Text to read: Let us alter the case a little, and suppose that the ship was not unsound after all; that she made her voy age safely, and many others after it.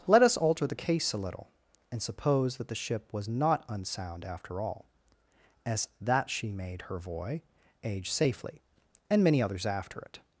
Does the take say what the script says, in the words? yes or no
no